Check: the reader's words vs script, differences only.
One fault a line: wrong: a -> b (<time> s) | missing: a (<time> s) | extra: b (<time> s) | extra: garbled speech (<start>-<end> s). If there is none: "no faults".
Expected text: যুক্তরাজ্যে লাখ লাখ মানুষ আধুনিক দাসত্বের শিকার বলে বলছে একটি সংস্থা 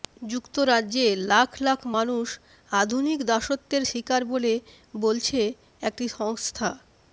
no faults